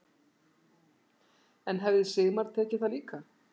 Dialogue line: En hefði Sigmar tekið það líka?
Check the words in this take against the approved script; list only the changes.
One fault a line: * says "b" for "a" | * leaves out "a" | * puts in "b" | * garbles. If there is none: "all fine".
all fine